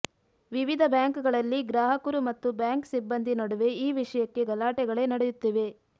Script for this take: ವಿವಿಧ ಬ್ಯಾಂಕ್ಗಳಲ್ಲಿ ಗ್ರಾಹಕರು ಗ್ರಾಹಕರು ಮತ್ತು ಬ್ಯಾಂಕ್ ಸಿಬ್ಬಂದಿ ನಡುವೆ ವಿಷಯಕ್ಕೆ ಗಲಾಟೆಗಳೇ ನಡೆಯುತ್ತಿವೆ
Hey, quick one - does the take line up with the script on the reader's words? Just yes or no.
no